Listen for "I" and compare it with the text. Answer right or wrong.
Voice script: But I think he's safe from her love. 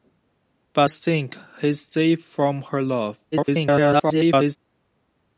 wrong